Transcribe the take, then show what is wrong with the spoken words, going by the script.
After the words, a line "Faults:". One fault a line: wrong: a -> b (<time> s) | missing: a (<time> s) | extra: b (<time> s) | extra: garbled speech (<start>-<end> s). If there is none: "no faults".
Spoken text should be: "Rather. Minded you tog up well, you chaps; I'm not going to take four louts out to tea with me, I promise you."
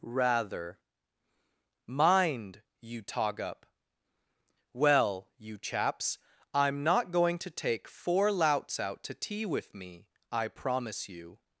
"Rather. Mind you tog up well, you chaps; I'm not going to take four louts out to tea with me, I promise you."
Faults:
wrong: Minded -> Mind (1.9 s)